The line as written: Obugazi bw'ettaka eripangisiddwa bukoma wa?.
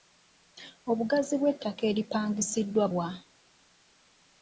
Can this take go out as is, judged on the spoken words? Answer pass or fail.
fail